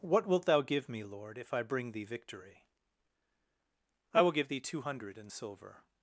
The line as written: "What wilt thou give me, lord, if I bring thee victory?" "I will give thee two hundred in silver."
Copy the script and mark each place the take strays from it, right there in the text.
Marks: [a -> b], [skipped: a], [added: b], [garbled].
"What wilt thou give me, lord, if I bring thee victory?" "I will give thee two hundred in silver."